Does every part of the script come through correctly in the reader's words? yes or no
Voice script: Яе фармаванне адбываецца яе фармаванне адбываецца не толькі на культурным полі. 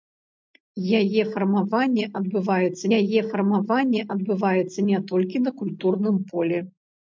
yes